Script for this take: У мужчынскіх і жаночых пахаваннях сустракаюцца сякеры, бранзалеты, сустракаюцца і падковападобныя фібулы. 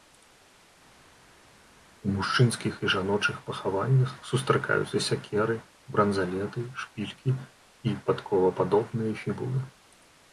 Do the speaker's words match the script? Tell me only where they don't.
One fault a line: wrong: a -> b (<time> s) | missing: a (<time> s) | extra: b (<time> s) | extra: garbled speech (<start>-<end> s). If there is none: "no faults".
wrong: сустракаюцца -> шпількі (6.8 s)